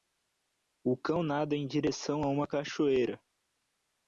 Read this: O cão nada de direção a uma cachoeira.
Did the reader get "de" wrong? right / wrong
wrong